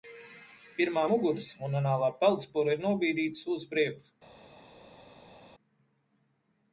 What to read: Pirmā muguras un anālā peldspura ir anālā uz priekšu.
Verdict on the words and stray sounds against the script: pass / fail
fail